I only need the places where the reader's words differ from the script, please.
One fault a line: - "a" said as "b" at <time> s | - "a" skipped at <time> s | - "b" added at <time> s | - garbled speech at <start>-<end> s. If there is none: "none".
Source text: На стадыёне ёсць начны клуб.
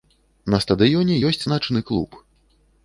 none